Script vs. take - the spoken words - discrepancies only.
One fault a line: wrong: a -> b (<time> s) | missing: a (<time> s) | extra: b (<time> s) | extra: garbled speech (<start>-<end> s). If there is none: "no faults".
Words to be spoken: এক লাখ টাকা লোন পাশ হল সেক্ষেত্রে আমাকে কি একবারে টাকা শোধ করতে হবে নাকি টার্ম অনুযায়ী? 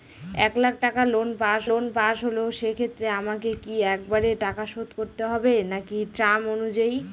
extra: লোন পাশ (1.7 s)